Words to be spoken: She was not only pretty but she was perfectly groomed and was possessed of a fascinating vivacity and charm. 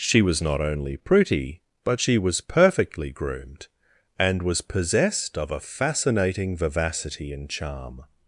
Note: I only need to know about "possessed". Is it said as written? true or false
true